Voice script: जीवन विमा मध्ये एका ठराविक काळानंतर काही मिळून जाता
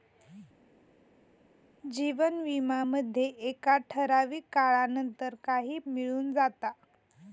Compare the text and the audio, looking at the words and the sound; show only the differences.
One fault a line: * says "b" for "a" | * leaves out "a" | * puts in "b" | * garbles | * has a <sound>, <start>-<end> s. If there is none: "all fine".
all fine